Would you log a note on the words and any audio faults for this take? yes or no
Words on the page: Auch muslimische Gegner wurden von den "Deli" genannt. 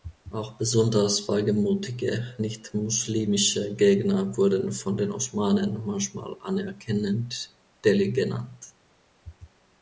yes